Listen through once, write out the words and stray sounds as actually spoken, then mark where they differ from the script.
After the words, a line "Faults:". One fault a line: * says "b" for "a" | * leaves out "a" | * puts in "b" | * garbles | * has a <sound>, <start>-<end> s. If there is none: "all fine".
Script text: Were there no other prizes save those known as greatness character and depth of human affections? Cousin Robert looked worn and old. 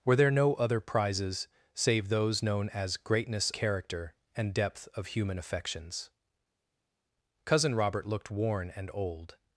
Were there no other prizes save those known as greatness character and depth of human affections? Cousin Robert looked worn and old.
Faults:
all fine